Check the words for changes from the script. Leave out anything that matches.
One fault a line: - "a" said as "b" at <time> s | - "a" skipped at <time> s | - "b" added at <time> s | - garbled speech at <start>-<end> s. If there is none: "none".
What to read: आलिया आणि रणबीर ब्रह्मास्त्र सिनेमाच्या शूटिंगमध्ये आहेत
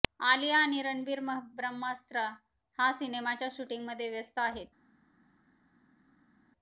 - "हा" added at 2.8 s
- "व्यस्त" added at 4.1 s